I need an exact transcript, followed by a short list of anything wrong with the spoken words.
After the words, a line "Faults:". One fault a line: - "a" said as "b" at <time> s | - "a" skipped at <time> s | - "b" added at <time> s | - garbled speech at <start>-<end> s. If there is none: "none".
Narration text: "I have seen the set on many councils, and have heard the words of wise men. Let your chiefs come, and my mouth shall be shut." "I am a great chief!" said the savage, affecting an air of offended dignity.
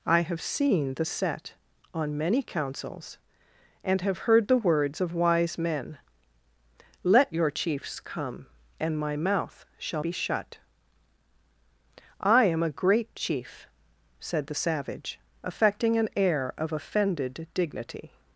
"I have seen the set on many councils, and have heard the words of wise men. Let your chiefs come, and my mouth shall be shut." "I am a great chief!" said the savage, affecting an air of offended dignity.
Faults:
none